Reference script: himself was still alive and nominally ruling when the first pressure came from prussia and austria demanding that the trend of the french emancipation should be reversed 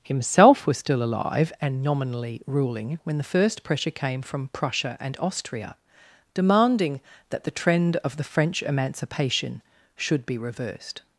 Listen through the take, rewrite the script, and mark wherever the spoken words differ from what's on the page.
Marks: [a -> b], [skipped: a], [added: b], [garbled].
himself was still alive and nominally ruling when the first pressure came from prussia and austria demanding that the trend of the french emancipation should be reversed